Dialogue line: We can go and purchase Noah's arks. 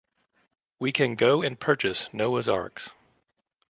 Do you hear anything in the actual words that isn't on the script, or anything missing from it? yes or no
no